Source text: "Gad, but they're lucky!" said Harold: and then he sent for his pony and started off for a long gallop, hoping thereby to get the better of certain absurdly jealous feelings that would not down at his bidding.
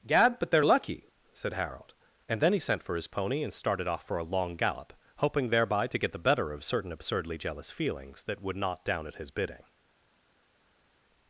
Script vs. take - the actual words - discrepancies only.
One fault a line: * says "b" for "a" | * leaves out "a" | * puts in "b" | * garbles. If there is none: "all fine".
all fine